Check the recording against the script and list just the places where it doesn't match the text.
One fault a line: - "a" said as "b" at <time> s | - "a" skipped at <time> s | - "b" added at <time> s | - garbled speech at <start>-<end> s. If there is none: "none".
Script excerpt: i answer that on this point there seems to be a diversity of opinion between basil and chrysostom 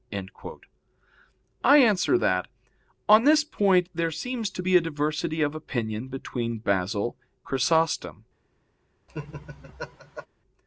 - "and" skipped at 7.2 s